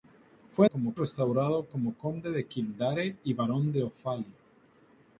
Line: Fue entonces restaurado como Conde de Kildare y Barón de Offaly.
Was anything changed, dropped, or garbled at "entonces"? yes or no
yes